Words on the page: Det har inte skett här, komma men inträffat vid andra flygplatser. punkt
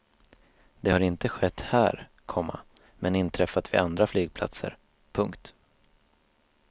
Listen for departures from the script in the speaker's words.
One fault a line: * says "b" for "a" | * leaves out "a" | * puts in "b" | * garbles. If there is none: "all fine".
all fine